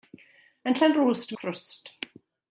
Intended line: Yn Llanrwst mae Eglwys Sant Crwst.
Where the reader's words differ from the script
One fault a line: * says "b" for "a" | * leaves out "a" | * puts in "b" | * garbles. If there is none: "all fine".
* leaves out "mae Eglwys Sant"